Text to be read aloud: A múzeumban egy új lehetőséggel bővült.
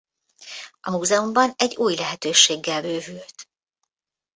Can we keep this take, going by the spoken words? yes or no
yes